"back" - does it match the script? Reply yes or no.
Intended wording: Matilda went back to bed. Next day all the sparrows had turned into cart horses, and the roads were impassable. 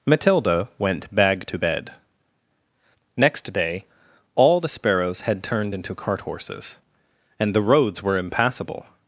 no